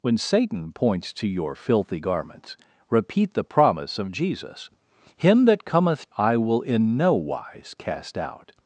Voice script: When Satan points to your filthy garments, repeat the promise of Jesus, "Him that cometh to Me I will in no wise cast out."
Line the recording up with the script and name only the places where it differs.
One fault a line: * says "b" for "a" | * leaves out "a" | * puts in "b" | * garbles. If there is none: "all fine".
* leaves out "to Me"